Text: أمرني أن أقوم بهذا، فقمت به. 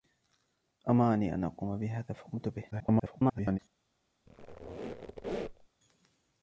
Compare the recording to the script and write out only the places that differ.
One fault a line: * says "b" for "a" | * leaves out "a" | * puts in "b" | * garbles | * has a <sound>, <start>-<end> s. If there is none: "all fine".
* garbles
* has a squeak, 4.3-5.7 s